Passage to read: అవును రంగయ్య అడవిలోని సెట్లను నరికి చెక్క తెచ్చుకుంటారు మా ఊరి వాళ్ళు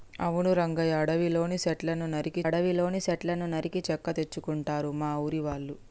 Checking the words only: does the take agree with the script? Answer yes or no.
no